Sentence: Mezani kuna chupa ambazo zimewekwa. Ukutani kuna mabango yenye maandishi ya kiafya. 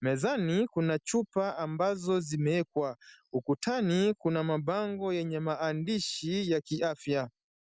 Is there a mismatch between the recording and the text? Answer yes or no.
no